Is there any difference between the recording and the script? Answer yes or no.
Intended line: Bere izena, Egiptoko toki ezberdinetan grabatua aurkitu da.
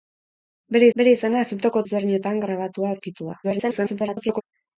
yes